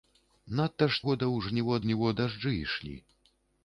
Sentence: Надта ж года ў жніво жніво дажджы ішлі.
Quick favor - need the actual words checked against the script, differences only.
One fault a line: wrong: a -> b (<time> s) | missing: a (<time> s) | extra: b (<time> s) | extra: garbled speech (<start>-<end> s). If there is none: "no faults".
no faults